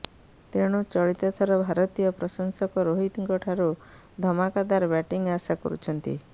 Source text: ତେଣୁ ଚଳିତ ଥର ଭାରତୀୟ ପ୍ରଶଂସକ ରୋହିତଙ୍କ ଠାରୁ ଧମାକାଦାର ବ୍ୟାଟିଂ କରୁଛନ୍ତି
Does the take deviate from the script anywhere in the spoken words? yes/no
yes